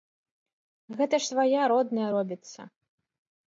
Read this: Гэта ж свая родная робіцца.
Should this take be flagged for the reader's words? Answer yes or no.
no